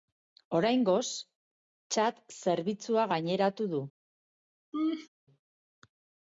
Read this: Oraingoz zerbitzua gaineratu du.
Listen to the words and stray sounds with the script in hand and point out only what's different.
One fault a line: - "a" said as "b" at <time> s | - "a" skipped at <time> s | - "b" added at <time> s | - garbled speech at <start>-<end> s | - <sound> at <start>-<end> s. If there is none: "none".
- "txat" added at 2.0 s
- laugh at 4.7-5.1 s